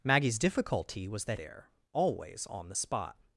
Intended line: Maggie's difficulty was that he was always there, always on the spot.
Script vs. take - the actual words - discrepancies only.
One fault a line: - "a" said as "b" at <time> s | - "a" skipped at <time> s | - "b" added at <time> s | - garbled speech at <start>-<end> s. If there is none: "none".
- "he was always" skipped at 1.4 s